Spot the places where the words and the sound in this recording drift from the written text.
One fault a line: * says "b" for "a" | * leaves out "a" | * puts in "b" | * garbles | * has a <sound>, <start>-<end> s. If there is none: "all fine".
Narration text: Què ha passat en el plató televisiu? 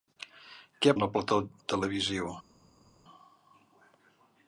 * leaves out "passat"